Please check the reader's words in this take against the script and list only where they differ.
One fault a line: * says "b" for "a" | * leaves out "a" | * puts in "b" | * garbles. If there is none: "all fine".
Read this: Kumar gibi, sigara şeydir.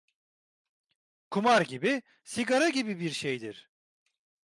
* puts in "gibi bir"